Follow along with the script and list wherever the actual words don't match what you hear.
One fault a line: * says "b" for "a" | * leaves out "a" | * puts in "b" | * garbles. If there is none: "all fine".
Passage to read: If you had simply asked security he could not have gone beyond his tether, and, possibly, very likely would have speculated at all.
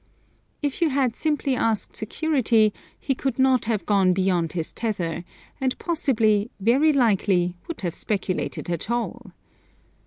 all fine